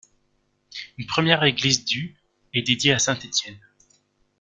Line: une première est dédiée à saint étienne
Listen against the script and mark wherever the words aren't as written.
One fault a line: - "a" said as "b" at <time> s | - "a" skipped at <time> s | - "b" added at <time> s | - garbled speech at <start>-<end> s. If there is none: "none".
- "église du" added at 1.4 s